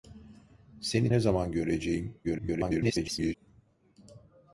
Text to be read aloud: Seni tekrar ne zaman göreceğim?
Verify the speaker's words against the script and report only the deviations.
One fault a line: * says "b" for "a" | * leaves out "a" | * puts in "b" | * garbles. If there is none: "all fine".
* leaves out "tekrar"
* garbles